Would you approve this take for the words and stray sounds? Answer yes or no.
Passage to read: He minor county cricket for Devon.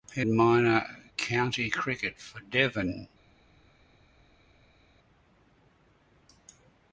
yes